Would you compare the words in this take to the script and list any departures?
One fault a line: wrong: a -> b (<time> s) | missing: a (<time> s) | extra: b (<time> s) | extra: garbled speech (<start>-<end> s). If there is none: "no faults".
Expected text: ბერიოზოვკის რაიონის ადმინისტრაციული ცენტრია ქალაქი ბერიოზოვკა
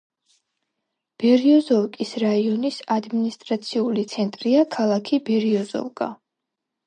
no faults